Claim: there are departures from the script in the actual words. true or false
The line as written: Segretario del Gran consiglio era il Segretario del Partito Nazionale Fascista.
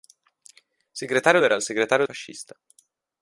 true